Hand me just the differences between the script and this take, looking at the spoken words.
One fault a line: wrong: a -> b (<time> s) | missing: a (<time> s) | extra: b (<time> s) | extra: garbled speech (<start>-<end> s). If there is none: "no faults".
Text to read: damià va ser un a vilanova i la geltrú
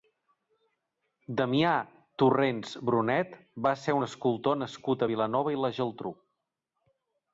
extra: torrents brunet (2.2 s)
extra: escultor nascut (4.1 s)